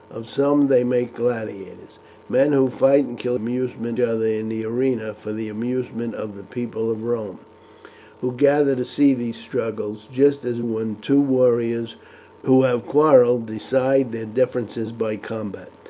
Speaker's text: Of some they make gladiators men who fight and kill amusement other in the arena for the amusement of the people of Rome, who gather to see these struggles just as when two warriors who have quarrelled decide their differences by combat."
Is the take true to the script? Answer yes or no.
yes